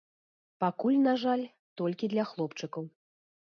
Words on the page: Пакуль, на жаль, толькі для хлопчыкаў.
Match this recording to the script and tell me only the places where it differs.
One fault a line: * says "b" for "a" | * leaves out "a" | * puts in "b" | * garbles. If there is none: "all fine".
all fine